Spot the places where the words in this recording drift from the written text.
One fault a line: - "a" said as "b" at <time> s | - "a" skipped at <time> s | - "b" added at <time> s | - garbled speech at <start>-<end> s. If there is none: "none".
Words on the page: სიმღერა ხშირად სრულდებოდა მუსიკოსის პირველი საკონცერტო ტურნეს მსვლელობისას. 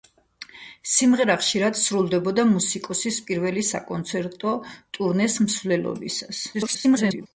- garbled speech at 6.5-7.3 s